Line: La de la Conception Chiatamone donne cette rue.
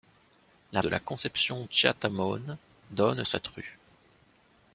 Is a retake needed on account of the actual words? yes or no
no